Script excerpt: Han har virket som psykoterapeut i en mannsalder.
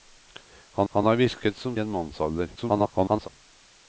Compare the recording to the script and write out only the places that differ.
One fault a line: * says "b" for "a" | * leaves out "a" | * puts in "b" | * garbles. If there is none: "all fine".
* puts in "han"
* leaves out "psykoterapeut i"
* garbles